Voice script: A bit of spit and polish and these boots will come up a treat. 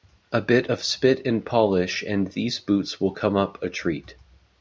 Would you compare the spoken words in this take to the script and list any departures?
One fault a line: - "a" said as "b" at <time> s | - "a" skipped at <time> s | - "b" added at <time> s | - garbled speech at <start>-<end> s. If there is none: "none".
none